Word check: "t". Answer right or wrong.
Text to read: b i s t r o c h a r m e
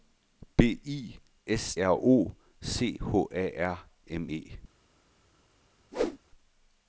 wrong